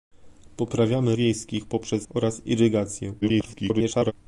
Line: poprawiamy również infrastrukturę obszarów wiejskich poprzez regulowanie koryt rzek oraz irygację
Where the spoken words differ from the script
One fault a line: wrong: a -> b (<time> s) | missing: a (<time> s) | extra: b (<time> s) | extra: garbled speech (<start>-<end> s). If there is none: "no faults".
missing: również infrastrukturę obszarów (1.1 s)
missing: regulowanie koryt rzek (2.1 s)
extra: garbled speech (3.2-4.1 s)